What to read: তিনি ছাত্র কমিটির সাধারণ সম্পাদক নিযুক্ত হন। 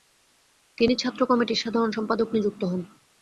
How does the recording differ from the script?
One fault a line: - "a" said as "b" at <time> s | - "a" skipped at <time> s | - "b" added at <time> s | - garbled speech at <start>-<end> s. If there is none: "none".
none